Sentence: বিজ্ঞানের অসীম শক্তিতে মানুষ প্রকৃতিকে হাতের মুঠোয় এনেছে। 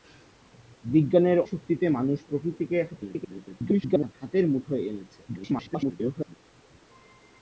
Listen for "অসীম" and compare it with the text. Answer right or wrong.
wrong